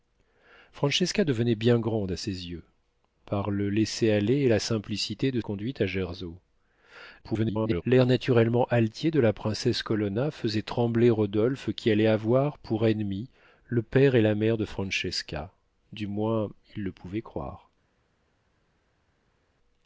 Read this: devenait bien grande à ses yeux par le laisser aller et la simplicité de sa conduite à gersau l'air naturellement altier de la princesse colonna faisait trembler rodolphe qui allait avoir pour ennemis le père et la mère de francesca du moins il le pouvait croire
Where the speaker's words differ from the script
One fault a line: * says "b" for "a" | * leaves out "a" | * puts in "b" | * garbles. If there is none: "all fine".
* leaves out "sa"
* garbles